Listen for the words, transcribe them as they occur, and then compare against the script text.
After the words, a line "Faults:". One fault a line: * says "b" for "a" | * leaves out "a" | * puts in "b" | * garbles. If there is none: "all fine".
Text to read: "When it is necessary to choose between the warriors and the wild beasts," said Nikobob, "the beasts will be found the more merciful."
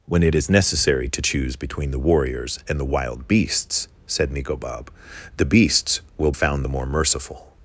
"When it is necessary to choose between the warriors and the wild beasts," said Nikobob, "the beasts will found the more merciful."
Faults:
* leaves out "be"